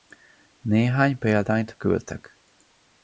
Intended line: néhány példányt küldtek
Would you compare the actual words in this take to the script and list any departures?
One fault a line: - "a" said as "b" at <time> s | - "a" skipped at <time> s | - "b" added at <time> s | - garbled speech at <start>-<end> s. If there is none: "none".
none